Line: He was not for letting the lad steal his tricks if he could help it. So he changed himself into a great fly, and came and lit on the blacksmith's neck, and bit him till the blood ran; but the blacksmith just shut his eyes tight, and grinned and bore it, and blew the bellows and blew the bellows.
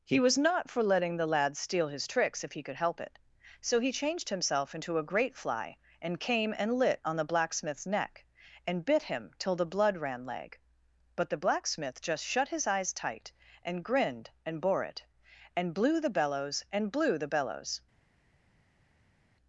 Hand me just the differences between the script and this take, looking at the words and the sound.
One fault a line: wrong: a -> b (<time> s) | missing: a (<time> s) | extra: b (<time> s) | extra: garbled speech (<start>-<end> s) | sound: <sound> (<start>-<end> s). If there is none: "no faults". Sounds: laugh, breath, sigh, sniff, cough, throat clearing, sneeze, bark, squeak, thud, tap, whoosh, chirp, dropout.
extra: leg (10.2 s)